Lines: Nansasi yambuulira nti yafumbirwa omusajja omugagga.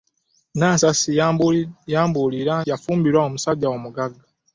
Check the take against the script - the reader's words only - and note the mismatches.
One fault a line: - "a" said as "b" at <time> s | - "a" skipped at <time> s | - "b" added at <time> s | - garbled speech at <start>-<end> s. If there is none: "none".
- "nti" skipped at 2.5 s